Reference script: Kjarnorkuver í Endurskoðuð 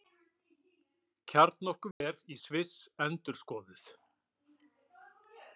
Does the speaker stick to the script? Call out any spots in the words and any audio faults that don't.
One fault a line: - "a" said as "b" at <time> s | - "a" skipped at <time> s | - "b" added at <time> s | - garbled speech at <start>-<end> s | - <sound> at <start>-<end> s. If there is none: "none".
- dropout at 1.9-2.0 s
- "Sviss" added at 2.4 s